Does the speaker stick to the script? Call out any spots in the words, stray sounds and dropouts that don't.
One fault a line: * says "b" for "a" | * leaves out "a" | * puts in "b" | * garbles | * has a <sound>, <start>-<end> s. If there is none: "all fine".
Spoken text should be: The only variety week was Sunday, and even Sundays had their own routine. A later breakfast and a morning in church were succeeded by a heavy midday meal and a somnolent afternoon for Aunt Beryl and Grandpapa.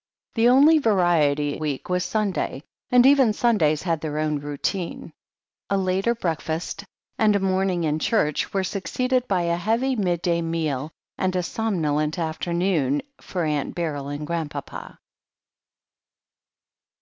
all fine